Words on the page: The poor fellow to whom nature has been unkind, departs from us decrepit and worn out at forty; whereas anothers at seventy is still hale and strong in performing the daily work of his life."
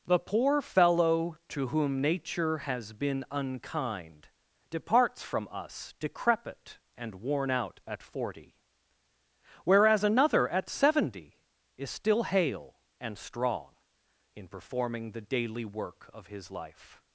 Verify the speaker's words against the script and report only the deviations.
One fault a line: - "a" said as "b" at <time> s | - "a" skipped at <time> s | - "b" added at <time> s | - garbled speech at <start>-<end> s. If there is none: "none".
- "anothers" said as "another" at 10.0 s